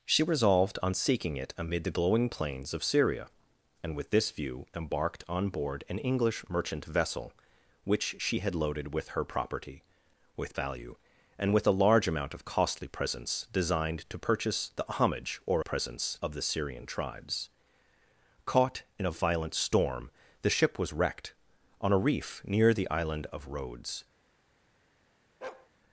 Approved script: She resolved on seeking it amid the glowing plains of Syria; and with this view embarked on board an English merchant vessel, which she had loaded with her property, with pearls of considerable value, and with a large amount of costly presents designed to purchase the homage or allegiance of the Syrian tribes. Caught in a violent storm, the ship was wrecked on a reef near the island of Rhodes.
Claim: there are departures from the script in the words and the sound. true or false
true